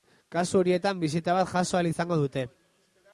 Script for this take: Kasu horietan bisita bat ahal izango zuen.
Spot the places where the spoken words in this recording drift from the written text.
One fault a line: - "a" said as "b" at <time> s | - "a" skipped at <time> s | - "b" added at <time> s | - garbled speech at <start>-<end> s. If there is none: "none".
- "jaso" added at 1.5 s
- "zuen" said as "dute" at 2.2 s